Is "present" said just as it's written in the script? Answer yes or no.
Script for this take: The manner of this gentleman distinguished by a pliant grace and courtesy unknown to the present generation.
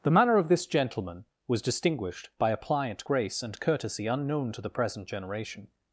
yes